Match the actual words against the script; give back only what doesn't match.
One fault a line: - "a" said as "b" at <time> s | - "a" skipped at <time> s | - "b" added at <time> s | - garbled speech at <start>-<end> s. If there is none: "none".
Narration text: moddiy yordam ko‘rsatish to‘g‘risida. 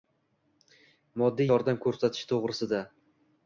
none